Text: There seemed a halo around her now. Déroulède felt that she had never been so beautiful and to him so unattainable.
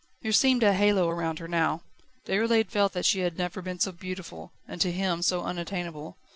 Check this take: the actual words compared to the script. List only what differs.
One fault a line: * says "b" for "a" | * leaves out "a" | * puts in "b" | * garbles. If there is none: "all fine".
all fine